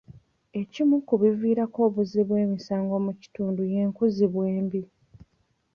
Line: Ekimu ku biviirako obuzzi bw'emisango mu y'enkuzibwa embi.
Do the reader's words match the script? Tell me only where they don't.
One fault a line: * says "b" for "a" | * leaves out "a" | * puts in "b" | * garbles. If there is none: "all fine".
* puts in "kitundu"